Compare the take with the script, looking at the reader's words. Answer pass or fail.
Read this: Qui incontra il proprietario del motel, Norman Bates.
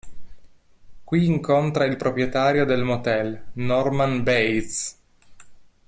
pass